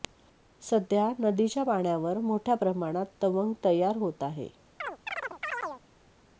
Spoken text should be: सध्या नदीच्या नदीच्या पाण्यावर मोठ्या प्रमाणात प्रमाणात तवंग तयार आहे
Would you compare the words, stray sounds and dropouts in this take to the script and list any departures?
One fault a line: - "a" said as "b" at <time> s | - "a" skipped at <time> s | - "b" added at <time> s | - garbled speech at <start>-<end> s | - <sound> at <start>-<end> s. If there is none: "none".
- "नदीच्या" skipped at 1.6 s
- "प्रमाणात" skipped at 3.0 s
- "होत" added at 4.0 s
- chirp at 4.8-5.8 s